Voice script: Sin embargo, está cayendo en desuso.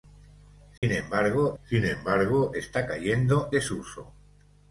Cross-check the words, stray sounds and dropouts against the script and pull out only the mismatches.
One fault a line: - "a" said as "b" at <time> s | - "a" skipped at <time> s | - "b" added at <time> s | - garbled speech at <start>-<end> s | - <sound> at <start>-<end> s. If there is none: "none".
- dropout at 0.8-0.8 s
- "sin embargo" added at 1.6 s
- "en" skipped at 3.5 s